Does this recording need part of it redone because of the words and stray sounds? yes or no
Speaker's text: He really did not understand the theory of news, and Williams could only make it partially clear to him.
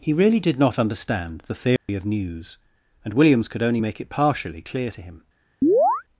yes